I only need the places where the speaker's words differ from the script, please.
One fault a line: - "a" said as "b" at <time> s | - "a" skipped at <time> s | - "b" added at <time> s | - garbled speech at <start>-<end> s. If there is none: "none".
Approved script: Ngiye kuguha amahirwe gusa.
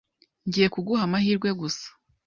none